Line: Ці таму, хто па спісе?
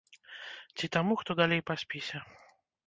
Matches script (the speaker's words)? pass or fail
fail